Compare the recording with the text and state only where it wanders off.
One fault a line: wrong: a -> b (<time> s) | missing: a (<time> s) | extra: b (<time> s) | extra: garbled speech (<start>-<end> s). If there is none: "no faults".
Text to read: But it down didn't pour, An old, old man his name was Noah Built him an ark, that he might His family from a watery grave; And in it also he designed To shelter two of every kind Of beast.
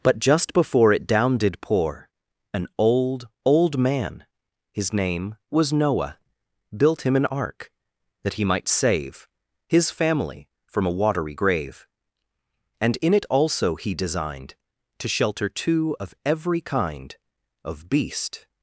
extra: just before (0.2 s)
wrong: didn't -> did (1.4 s)
extra: save (8.7 s)